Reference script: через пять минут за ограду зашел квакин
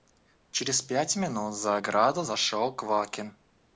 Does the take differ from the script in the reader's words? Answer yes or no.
no